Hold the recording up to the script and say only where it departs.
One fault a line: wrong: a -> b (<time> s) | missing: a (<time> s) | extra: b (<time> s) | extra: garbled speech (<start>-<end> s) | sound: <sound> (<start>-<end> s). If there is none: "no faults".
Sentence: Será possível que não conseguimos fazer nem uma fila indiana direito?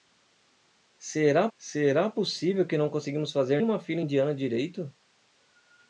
extra: será (1.6 s)
missing: nem (3.6 s)